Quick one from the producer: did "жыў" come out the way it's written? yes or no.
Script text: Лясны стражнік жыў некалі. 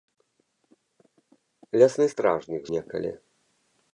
no